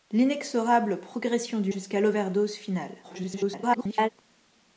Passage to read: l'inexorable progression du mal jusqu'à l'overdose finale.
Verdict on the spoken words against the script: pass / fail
fail